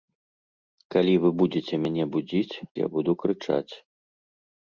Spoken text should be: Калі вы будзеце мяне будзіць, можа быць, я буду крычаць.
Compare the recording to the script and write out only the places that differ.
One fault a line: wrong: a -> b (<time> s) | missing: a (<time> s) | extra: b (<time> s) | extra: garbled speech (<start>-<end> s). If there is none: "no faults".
missing: можа быць (2.5 s)